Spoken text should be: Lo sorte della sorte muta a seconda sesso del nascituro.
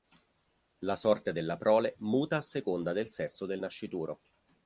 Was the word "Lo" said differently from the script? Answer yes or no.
yes